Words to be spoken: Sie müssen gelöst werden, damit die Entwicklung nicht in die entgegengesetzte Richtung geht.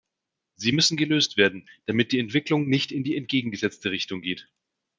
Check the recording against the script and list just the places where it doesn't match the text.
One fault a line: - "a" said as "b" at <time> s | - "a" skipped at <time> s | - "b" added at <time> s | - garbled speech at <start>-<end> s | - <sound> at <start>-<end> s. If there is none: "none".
none